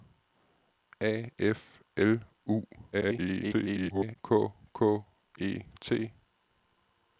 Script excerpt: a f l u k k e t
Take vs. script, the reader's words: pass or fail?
fail